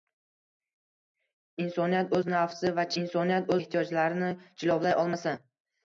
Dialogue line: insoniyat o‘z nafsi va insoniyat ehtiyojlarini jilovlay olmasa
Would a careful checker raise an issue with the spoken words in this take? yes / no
no